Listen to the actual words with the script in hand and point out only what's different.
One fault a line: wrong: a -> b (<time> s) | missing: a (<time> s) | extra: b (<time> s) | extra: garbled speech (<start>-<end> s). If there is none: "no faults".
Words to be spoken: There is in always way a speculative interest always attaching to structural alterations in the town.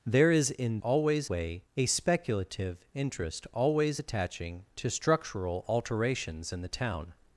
no faults